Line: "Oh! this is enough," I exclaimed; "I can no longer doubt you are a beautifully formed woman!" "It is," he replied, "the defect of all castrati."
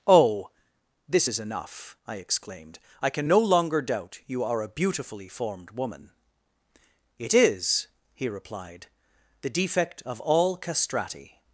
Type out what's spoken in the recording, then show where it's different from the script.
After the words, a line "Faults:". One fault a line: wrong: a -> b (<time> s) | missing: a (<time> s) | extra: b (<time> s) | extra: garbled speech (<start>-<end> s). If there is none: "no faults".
"Oh! this is enough," I exclaimed; "I can no longer doubt you are a beautifully formed woman!" "It is," he replied, "the defect of all castrati."
Faults:
no faults